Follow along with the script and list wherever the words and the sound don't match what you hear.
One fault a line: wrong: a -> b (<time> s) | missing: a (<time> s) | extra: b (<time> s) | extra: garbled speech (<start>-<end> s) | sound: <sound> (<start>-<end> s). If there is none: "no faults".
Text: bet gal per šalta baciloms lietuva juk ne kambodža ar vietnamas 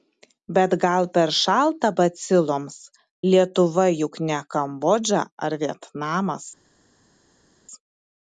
no faults